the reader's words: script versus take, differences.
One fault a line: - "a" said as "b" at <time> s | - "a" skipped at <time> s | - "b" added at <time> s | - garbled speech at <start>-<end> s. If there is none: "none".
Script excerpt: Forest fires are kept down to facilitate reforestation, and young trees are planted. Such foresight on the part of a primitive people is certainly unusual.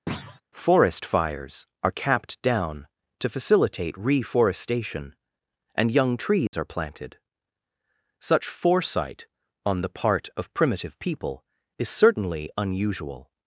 - "kept" said as "capped" at 1.9 s
- "a" skipped at 10.5 s